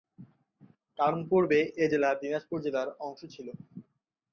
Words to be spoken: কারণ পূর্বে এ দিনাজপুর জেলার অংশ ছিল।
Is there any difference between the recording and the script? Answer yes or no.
yes